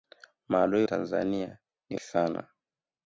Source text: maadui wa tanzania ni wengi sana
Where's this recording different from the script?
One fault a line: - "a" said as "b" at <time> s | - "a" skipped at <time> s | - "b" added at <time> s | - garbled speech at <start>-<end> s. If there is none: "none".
- "wa" skipped at 0.9 s
- "wengi" skipped at 2.0 s